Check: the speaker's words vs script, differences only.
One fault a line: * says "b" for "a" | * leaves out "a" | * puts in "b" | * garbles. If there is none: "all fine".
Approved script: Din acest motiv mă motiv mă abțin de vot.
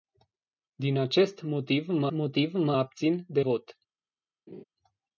all fine